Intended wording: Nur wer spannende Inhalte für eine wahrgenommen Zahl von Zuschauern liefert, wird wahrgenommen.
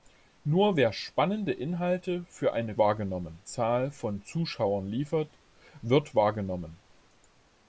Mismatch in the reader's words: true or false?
false